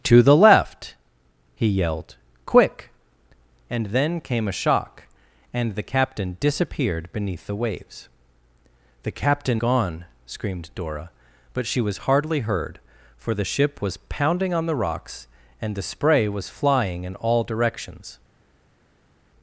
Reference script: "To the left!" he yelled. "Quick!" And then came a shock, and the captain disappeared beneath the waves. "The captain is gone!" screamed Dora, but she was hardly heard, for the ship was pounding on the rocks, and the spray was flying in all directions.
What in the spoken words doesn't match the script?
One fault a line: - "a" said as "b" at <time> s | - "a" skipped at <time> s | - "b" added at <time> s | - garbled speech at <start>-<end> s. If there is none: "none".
- "is" skipped at 9.6 s